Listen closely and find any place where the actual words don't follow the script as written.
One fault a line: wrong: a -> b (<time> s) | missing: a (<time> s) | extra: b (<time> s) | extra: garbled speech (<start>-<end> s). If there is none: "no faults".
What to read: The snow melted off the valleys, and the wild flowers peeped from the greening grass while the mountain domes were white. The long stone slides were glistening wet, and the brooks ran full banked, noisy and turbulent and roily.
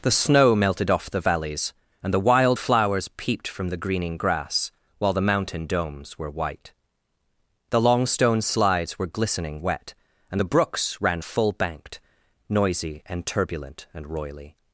no faults